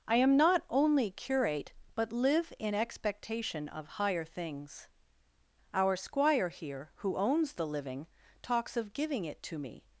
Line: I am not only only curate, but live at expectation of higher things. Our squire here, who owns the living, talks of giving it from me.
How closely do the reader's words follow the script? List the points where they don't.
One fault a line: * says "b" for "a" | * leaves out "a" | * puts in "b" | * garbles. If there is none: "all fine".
* leaves out "only"
* says "in" for "at"
* says "to" for "from"